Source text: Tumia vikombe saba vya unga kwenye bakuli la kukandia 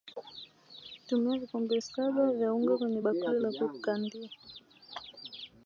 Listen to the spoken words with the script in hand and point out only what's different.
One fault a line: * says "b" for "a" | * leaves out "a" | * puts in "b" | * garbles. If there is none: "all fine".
all fine